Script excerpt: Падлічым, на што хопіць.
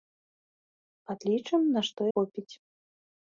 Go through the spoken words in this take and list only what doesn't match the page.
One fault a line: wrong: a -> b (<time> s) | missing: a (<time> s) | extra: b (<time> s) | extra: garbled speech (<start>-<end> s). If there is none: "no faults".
no faults